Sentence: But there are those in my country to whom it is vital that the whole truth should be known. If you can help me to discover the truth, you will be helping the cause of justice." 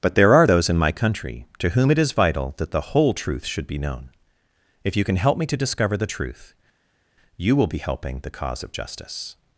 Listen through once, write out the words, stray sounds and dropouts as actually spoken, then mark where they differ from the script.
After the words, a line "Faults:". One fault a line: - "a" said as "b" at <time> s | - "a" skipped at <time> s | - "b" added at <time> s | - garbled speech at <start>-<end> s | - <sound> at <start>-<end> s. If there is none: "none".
But there are those in my country to whom it is vital that the whole truth should be known. If you can help me to discover the truth, you will be helping the cause of justice."
Faults:
none